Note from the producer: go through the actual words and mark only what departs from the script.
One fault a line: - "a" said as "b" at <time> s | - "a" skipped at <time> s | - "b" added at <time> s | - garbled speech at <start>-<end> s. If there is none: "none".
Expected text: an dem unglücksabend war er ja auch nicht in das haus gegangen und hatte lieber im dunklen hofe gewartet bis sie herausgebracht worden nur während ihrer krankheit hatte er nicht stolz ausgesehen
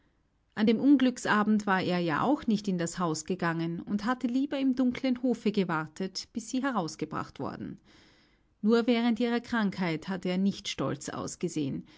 none